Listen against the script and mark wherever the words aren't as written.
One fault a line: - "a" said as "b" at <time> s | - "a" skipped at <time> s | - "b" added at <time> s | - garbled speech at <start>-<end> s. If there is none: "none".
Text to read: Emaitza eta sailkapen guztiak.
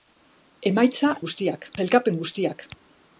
- "eta" said as "guztiak" at 1.3 s